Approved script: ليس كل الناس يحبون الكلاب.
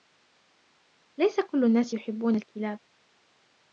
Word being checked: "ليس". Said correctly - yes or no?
yes